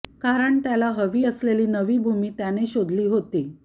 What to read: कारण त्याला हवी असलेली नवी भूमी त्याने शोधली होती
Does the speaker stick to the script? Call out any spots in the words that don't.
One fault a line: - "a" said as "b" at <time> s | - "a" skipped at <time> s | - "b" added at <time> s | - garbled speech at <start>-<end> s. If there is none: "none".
none